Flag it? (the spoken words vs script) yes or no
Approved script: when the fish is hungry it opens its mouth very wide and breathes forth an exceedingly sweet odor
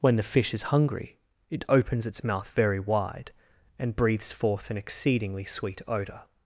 no